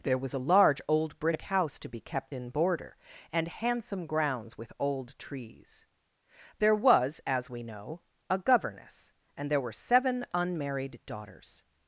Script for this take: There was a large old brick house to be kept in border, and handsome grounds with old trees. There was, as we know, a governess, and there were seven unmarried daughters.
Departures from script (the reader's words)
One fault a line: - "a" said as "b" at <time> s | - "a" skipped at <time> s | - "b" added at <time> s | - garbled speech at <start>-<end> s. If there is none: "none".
none